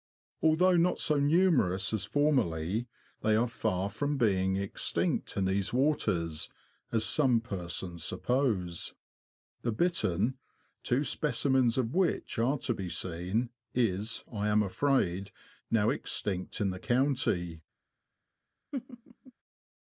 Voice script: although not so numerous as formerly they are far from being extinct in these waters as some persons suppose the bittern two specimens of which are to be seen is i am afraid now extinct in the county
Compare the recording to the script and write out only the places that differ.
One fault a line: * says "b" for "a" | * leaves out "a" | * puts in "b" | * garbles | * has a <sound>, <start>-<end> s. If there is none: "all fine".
* has a laugh, 18.7-19.3 s